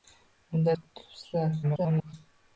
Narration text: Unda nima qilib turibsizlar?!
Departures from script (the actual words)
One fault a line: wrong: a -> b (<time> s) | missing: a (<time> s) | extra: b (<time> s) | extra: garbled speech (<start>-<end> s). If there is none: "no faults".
missing: nima (0.7 s)
extra: garbled speech (1.6-2.1 s)